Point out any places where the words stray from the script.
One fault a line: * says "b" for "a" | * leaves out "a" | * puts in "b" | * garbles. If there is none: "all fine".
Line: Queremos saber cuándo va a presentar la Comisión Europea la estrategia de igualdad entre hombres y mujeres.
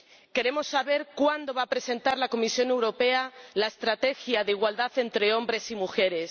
all fine